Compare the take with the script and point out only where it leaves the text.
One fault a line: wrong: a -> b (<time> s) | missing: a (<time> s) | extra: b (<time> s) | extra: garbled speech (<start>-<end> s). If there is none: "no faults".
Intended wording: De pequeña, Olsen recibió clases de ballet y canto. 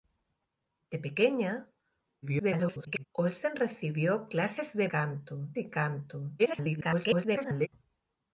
extra: garbled speech (2.2-3.1 s)
wrong: ballet -> canto (4.8 s)
extra: garbled speech (6.4-7.7 s)